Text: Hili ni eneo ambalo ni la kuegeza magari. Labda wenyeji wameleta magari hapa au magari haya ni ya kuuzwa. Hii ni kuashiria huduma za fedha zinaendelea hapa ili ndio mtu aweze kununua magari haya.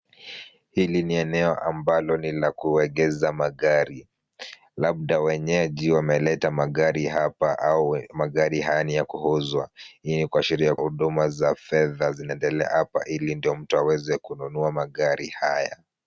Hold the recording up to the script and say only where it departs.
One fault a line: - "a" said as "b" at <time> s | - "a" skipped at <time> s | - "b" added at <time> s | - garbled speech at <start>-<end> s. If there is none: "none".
none